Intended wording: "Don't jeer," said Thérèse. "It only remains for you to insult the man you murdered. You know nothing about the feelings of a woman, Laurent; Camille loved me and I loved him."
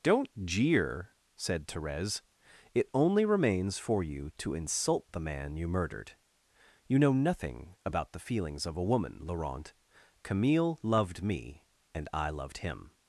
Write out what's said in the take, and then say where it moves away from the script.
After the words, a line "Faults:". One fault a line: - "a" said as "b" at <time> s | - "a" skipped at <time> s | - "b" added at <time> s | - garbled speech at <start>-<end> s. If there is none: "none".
"Don't jeer," said Thérèse. "It only remains for you to insult the man you murdered. You know nothing about the feelings of a woman, Laurent; Camille loved me and I loved him."
Faults:
none